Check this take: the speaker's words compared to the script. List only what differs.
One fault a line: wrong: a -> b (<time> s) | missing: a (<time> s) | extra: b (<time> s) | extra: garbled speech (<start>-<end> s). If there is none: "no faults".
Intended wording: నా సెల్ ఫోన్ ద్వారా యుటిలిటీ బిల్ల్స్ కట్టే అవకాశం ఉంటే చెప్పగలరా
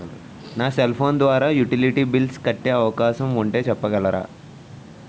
no faults